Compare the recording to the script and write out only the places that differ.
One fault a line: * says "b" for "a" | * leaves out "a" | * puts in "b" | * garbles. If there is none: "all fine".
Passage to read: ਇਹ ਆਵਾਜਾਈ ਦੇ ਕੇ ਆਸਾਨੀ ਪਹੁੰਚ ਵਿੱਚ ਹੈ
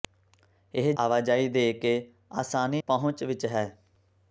all fine